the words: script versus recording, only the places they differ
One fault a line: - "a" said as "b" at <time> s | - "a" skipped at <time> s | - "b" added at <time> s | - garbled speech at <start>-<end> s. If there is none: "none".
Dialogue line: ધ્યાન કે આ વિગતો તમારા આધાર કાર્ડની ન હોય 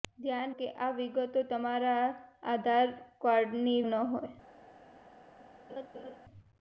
none